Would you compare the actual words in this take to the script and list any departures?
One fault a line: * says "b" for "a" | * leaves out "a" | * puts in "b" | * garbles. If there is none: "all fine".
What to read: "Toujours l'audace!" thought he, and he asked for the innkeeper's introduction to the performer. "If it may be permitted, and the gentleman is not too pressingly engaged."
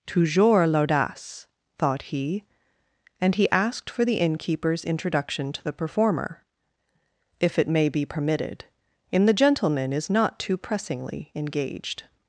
* says "in" for "and"